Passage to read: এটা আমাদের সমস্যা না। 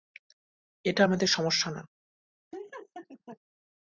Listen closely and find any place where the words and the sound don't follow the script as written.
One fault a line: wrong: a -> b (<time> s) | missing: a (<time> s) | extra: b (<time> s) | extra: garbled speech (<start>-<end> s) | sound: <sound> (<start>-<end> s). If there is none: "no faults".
sound: laugh (2.5-3.4 s)